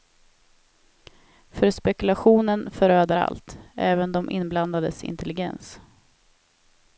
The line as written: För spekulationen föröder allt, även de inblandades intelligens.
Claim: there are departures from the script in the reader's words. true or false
false